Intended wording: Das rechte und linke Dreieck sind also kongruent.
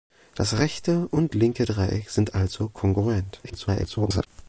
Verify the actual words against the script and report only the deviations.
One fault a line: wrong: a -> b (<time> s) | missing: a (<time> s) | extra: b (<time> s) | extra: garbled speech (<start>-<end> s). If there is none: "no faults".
extra: garbled speech (3.4-4.3 s)